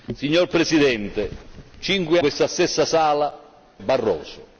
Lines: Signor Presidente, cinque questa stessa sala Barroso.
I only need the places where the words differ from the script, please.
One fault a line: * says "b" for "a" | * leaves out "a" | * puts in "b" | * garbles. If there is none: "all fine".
all fine